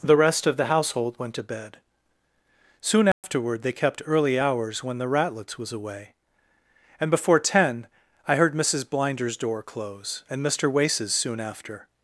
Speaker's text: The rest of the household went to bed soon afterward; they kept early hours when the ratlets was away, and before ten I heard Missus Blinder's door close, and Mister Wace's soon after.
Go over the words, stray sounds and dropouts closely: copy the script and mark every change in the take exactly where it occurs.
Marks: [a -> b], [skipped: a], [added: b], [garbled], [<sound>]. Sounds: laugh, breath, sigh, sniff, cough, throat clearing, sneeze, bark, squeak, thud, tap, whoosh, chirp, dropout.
The rest of the household went to bed soon afterward; [dropout] they kept early hours when the ratlets was away, and before ten I heard Missus Blinder's door close, and Mister Wace's soon after.